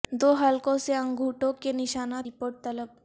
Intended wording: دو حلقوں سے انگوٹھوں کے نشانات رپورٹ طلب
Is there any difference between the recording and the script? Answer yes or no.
no